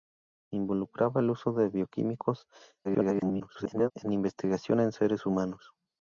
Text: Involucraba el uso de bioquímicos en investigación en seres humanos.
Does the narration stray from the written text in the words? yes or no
yes